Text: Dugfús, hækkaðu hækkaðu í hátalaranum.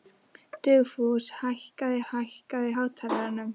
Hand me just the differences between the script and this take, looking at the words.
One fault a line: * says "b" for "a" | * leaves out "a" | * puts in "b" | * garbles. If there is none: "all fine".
all fine